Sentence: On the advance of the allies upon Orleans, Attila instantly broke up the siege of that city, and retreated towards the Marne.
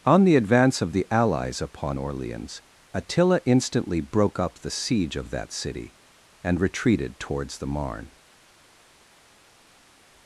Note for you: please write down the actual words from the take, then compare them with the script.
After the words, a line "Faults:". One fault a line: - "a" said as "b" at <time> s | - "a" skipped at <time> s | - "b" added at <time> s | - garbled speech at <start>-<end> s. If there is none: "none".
On the advance of the allies upon Orleans, Attila instantly broke up the siege of that city, and retreated towards the Marne.
Faults:
none